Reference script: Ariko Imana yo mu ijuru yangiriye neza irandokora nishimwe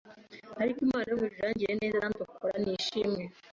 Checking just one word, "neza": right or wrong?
right